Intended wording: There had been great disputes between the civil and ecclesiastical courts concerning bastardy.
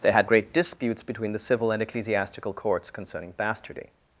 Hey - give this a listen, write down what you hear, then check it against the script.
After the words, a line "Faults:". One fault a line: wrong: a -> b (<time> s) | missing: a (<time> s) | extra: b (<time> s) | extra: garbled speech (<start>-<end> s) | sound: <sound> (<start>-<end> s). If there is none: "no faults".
There had great disputes between the civil and ecclesiastical courts concerning bastardy.
Faults:
missing: been (0.3 s)